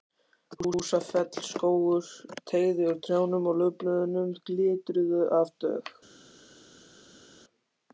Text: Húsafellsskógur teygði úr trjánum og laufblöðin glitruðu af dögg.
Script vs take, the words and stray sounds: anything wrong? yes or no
no